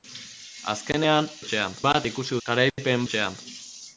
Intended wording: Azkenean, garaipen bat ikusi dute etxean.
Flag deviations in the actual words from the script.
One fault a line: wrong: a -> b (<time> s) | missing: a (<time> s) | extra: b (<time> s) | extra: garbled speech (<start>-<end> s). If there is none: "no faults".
wrong: garaipen -> etxean (1.4 s)
wrong: dute -> garaipen (2.5 s)